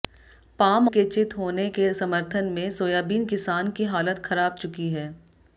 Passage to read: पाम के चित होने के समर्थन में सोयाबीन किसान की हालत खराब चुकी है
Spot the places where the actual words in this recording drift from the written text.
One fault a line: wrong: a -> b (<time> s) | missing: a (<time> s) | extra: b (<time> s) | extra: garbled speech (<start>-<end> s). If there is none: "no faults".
no faults